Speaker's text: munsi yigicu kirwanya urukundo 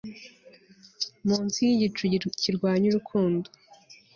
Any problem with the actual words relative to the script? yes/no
no